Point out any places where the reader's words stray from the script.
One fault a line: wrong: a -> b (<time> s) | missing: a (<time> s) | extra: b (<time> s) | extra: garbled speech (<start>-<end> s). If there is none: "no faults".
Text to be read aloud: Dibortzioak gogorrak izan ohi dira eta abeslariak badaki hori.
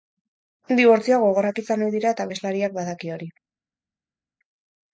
no faults